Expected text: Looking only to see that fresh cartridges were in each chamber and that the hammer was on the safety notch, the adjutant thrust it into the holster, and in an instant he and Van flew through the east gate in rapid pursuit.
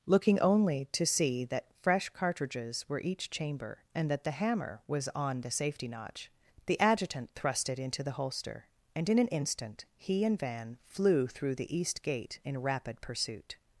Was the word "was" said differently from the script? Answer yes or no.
no